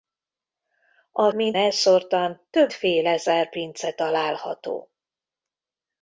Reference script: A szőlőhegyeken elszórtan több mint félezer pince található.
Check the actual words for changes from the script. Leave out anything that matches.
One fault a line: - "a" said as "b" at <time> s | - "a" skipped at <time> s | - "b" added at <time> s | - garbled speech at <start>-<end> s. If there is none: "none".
- "szőlőhegyeken" said as "mint" at 1.3 s
- "mint" skipped at 2.7 s